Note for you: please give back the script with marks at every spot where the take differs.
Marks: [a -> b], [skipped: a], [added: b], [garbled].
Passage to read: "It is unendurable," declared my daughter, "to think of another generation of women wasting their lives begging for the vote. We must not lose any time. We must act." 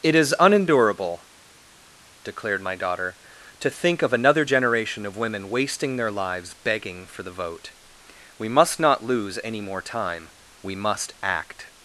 "It is unendurable," declared my daughter, "to think of another generation of women wasting their lives begging for the vote. We must not lose any [added: more] time. We must act."